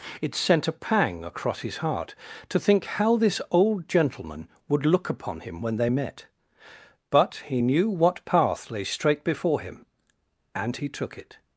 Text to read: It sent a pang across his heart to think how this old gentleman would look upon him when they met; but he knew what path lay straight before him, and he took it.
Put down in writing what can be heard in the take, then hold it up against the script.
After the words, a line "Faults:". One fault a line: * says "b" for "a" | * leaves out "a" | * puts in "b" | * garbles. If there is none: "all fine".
It sent a pang across his heart to think how this old gentleman would look upon him when they met; but he knew what path lay straight before him, and he took it.
Faults:
all fine